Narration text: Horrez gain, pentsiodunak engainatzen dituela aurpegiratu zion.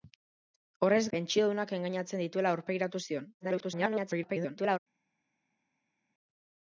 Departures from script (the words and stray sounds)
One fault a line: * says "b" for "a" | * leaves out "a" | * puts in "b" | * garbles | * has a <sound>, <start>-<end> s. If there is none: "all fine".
* leaves out "gain"
* garbles